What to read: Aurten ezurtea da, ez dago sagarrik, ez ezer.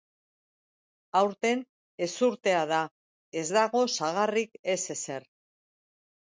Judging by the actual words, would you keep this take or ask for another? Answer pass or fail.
pass